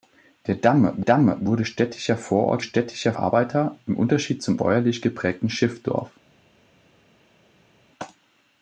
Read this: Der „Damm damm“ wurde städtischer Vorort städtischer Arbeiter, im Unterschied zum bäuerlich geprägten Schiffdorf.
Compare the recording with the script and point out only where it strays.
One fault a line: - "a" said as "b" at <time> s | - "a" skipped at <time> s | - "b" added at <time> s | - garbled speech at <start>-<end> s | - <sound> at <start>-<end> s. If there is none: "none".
none